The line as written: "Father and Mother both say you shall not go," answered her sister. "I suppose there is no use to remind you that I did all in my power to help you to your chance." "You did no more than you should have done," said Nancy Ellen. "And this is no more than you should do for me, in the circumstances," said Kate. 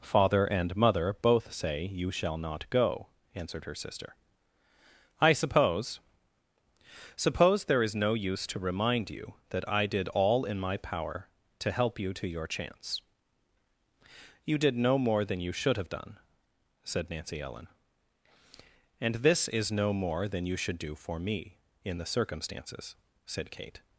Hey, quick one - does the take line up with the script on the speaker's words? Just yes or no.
no